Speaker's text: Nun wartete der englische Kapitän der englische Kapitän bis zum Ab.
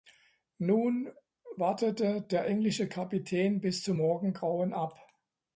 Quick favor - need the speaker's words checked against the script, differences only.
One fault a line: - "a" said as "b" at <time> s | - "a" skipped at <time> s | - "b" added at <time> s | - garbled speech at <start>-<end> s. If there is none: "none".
- "der englische Kapitän" skipped at 3.6 s
- "Morgengrauen" added at 4.0 s